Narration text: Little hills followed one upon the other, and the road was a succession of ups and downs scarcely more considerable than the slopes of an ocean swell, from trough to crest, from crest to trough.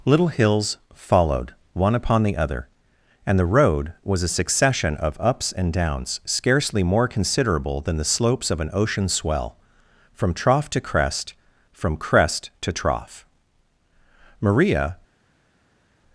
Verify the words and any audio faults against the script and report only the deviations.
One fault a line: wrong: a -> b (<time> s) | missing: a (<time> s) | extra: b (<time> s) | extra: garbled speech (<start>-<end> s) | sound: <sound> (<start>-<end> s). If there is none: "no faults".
extra: Maria (14.4 s)